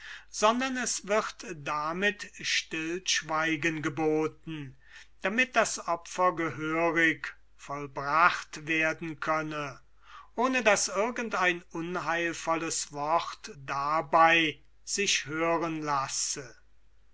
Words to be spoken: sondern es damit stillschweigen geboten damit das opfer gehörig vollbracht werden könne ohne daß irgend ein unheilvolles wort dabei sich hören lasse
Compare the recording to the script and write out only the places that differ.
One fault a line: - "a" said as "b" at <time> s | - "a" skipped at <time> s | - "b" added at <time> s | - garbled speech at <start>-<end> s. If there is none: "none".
- "wird" added at 1.1 s